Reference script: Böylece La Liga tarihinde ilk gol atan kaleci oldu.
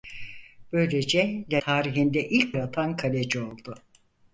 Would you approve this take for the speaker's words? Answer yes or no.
no